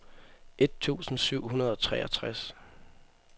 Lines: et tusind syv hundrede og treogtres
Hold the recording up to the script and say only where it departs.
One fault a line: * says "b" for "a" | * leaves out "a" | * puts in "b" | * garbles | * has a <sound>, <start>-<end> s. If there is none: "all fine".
all fine